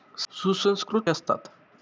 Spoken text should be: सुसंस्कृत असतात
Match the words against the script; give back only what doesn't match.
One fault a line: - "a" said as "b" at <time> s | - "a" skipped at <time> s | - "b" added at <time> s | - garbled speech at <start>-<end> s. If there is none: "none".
none